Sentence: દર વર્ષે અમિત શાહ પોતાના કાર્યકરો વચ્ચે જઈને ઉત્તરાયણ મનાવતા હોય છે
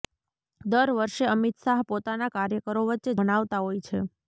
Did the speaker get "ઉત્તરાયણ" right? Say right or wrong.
wrong